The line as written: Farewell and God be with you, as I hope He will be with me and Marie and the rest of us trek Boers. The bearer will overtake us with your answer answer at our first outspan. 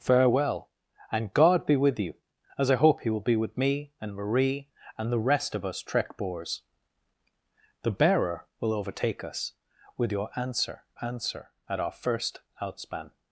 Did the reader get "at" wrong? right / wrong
right